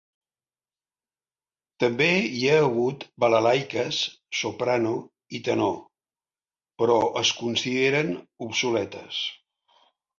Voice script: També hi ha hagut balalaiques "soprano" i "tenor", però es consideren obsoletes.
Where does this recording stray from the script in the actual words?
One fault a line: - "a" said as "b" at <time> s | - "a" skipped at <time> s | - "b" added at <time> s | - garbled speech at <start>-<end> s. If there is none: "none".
none